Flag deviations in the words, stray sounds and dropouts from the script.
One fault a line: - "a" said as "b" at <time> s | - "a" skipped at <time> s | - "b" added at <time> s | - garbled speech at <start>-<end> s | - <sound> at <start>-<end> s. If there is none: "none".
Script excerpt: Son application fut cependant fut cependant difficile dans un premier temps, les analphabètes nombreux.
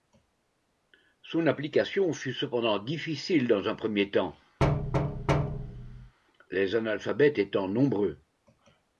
- "fut cependant" skipped at 2.8 s
- thud at 4.6-6.1 s
- "étant" added at 7.4 s